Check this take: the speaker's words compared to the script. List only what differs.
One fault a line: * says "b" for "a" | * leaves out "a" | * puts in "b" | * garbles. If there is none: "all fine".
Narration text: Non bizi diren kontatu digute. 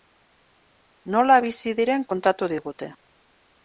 * says "Nola" for "Non"